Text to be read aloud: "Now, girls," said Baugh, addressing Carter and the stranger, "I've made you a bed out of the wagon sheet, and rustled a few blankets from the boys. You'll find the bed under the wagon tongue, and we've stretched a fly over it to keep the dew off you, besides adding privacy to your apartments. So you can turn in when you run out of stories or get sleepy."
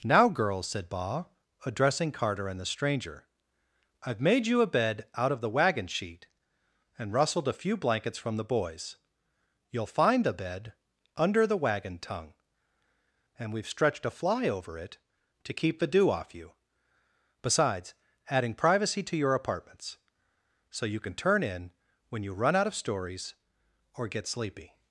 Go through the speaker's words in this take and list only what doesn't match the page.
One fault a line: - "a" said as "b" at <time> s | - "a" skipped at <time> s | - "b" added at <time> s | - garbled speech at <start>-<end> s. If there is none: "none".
none